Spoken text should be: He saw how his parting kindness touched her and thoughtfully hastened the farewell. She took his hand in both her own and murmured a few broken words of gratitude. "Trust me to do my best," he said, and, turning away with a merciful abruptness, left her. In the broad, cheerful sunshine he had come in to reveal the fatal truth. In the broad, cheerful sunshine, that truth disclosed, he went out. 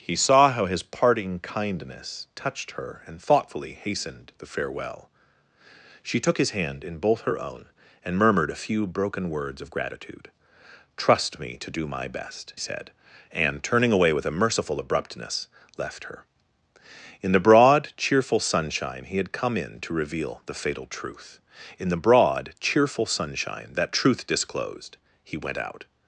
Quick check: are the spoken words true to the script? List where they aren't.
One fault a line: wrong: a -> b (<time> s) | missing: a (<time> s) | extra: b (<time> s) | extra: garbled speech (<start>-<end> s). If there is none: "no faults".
missing: he (12.5 s)